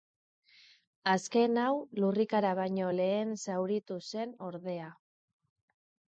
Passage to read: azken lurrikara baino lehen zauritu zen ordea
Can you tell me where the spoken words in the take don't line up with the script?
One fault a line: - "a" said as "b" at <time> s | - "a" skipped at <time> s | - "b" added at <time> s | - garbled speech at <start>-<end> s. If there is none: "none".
- "hau" added at 1.6 s